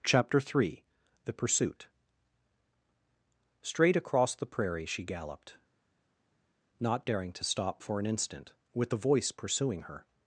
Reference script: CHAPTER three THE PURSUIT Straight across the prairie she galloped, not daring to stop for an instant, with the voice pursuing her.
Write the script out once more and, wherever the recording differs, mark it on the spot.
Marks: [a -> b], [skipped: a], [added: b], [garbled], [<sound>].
CHAPTER three THE PURSUIT Straight across the prairie she galloped, not daring to stop for an instant, with the voice pursuing her.